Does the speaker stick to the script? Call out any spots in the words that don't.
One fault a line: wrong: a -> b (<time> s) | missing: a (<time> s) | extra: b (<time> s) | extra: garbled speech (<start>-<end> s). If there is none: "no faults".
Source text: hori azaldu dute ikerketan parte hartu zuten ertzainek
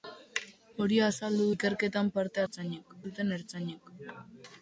missing: dute (1.4 s)
wrong: hartu -> ertzainek (2.4 s)